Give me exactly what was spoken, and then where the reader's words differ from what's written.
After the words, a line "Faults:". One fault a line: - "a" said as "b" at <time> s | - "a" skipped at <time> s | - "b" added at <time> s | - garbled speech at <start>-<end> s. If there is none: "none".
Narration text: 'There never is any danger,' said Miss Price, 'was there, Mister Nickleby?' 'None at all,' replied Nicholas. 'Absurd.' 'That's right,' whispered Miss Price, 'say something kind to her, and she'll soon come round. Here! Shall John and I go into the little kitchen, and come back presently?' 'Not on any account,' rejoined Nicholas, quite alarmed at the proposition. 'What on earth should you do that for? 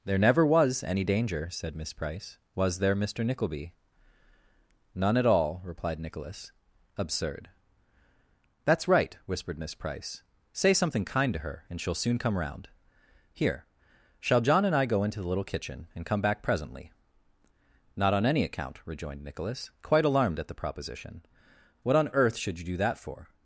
'There never was any danger,' said Miss Price, 'was there, Mister Nickleby?' 'None at all,' replied Nicholas. 'Absurd.' 'That's right,' whispered Miss Price, 'say something kind to her, and she'll soon come round. Here! Shall John and I go into the little kitchen, and come back presently?' 'Not on any account,' rejoined Nicholas, quite alarmed at the proposition. 'What on earth should you do that for?
Faults:
- "is" said as "was" at 0.5 s